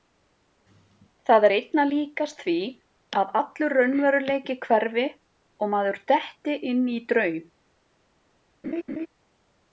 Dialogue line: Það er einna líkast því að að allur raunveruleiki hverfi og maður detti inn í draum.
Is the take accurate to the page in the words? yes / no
no